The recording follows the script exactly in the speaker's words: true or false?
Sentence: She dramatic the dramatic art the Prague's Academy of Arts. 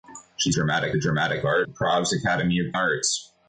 true